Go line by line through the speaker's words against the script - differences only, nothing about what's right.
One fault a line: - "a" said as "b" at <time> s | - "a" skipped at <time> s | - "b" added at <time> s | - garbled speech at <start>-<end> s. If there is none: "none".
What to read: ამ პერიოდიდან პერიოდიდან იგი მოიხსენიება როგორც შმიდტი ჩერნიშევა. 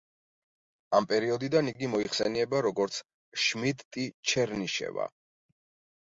- "პერიოდიდან" skipped at 1.7 s